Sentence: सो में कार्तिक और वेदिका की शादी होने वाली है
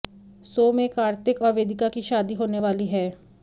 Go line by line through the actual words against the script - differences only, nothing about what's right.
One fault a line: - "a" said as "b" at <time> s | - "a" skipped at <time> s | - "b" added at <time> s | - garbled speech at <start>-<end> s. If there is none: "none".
none